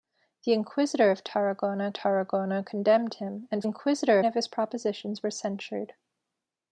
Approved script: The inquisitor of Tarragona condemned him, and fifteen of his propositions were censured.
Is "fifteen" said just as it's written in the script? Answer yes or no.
no